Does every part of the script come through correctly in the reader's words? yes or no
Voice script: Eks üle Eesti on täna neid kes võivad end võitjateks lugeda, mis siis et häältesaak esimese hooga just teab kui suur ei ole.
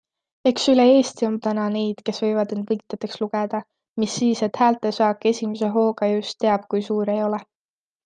yes